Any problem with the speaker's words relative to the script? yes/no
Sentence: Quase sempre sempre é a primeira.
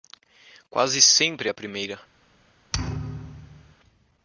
yes